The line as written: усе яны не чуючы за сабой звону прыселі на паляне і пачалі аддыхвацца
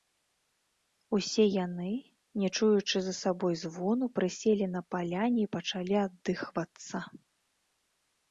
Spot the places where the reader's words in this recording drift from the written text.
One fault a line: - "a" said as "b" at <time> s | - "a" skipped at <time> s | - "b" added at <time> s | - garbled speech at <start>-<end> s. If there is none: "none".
none